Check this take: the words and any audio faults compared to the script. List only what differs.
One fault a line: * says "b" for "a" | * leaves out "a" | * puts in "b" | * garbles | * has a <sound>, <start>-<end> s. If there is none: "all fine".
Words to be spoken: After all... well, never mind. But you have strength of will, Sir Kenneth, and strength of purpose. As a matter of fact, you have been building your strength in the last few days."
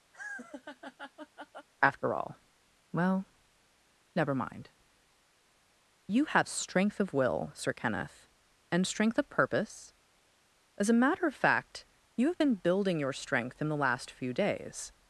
* has a laugh, 0.1-1.7 s
* leaves out "But"